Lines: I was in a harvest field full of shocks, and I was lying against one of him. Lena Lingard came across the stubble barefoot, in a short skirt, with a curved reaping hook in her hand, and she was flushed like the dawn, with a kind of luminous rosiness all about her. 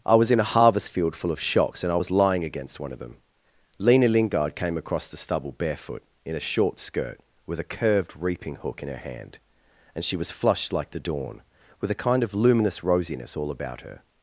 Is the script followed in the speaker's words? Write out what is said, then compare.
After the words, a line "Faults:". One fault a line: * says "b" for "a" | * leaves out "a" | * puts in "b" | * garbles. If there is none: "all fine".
I was in a harvest field full of shocks, and I was lying against one of them. Lena Lingard came across the stubble barefoot, in a short skirt, with a curved reaping hook in her hand, and she was flushed like the dawn, with a kind of luminous rosiness all about her.
Faults:
* says "them" for "him"